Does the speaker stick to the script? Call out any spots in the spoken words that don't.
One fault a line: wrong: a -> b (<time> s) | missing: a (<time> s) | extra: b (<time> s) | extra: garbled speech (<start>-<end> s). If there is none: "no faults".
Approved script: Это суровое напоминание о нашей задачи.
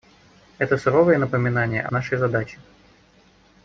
no faults